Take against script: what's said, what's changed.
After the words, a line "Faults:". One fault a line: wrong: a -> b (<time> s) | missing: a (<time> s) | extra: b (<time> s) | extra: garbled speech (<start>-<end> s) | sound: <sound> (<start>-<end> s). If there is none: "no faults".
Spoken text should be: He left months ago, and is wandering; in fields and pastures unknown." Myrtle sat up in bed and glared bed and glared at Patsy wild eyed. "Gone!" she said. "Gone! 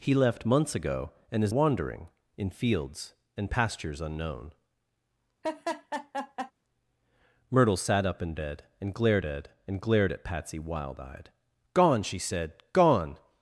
He left months ago, and is wandering; in fields and pastures unknown." Myrtle sat up in bed and glared bed and glared at Patsy wild eyed. "Gone!" she said. "Gone!
Faults:
sound: laugh (5.4-6.5 s)